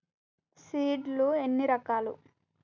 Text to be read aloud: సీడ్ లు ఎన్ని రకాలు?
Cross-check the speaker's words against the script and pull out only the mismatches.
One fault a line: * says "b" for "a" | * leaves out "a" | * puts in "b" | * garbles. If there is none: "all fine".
all fine